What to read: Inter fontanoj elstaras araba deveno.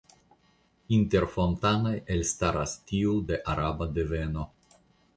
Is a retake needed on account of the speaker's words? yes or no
yes